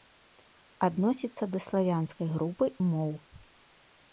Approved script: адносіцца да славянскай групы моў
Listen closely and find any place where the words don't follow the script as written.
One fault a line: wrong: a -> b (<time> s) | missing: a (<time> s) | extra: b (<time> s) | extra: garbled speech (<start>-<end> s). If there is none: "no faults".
no faults